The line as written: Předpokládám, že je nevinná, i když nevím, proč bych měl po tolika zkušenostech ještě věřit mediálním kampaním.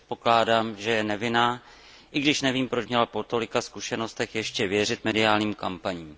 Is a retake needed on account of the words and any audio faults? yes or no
yes